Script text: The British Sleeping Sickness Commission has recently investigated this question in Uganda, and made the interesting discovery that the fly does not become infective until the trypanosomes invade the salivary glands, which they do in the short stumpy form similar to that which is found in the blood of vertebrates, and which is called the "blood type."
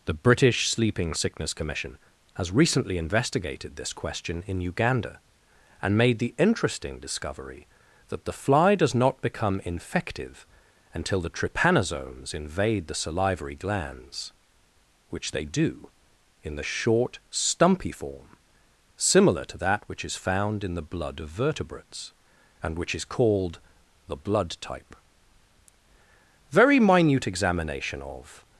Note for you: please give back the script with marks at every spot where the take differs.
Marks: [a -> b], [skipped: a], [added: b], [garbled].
The British Sleeping Sickness Commission has recently investigated this question in Uganda, and made the interesting discovery that the fly does not become infective until the trypanosomes invade the salivary glands, which they do in the short stumpy form similar to that which is found in the blood of vertebrates, and which is called the "blood type." [added: Very minute examination of]